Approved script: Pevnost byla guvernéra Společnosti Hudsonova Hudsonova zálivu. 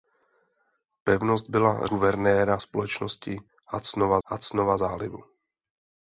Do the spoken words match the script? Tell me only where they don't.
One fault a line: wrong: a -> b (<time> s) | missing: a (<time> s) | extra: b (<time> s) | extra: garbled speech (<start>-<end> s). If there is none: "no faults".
no faults